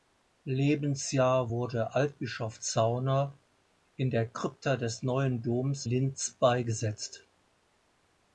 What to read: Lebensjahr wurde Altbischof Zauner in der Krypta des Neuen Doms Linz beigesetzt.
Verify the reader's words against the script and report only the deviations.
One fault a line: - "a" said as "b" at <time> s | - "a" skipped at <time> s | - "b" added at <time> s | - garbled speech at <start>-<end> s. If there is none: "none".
none